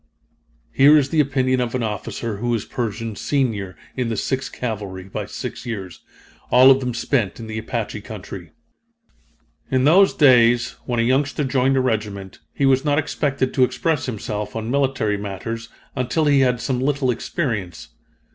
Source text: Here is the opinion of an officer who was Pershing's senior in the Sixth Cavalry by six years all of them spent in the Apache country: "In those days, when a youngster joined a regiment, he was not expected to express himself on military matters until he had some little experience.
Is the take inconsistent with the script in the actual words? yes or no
no